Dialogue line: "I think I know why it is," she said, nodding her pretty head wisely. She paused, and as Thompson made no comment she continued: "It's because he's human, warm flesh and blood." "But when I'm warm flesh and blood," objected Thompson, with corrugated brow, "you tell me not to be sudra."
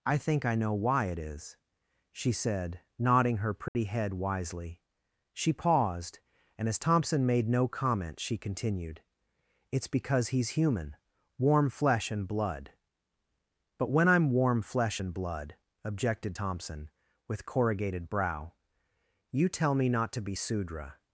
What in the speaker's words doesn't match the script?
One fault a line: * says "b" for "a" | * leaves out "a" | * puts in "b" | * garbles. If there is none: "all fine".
all fine